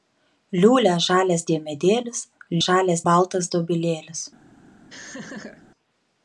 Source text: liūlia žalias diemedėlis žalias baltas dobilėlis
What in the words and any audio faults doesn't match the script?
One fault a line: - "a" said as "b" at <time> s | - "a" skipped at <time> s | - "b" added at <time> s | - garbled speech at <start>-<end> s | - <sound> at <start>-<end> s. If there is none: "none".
- laugh at 4.9-5.6 s